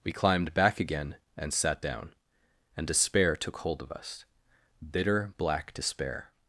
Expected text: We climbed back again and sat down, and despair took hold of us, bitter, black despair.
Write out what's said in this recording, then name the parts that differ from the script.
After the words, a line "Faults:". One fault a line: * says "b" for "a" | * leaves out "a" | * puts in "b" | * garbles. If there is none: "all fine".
We climbed back again and sat down, and despair took hold of us, bitter, black despair.
Faults:
all fine